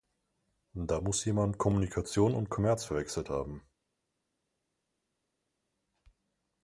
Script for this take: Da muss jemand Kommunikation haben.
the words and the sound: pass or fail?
fail